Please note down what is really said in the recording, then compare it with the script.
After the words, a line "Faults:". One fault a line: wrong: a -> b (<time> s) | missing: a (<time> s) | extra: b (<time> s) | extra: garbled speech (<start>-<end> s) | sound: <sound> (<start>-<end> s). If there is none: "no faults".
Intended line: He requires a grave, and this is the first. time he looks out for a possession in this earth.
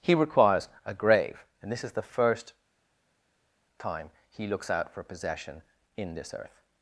He requires a grave, and this is the first. time he looks out for possession in this earth.
Faults:
missing: a (5.0 s)